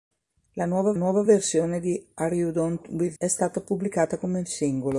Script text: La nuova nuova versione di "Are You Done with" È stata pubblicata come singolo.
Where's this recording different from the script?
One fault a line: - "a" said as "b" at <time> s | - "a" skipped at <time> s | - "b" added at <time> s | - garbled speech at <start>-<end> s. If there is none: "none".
none